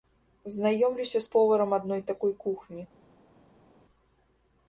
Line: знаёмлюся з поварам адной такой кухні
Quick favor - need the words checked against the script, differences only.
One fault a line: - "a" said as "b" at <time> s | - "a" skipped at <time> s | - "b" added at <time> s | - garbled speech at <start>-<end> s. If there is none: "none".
none